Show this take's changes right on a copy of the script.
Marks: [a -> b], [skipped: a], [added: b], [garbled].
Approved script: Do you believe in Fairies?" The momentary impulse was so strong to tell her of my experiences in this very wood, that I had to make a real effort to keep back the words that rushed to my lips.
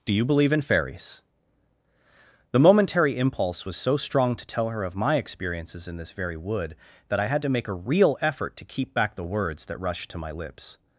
Do you believe in Fairies?" The momentary impulse was so strong to tell her of my experiences in this very wood, that I had to make a real effort to keep back the words that rushed to my lips.